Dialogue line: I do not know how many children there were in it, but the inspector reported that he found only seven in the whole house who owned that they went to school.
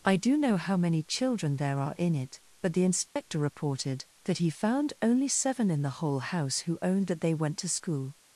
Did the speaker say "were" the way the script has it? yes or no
no